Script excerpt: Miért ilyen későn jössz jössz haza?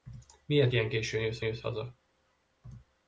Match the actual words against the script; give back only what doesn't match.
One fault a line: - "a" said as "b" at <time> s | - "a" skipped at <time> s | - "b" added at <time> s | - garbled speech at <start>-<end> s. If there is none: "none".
none